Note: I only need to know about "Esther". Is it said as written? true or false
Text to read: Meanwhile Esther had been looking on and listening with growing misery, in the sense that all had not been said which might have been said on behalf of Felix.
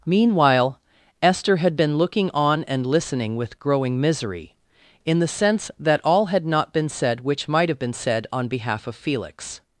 true